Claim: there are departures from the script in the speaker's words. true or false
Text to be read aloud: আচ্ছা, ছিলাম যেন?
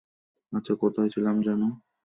true